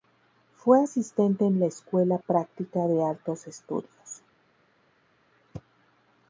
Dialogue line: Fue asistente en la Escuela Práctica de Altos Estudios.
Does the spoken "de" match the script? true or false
true